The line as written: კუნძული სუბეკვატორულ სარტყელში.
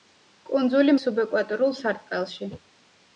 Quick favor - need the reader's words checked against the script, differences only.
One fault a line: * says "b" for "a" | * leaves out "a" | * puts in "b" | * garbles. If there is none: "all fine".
all fine